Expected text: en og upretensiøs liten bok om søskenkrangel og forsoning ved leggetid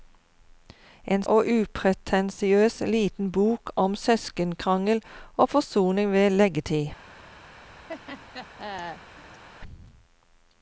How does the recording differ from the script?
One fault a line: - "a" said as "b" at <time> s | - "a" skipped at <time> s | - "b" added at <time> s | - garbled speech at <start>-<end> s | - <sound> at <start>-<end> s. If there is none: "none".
- laugh at 7.9-9.4 s